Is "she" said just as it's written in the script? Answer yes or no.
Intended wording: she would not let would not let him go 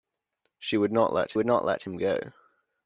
yes